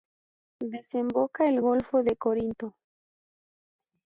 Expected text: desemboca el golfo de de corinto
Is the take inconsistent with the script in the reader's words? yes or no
yes